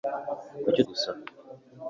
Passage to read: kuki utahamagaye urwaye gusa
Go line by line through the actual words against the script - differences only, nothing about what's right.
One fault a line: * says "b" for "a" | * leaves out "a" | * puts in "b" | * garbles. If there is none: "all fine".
* leaves out "utahamagaye urwaye"